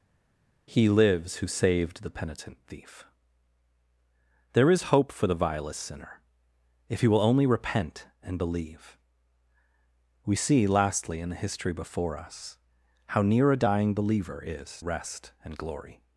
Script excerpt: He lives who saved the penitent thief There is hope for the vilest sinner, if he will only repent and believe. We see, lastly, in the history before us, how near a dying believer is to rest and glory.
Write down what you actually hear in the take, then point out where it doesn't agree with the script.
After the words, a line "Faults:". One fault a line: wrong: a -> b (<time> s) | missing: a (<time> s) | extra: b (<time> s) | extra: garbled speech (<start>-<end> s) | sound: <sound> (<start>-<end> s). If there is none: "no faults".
He lives who saved the penitent thief There is hope for the vilest sinner, if he will only repent and believe. We see, lastly, in the history before us, how near a dying believer is rest and glory.
Faults:
missing: to (14.8 s)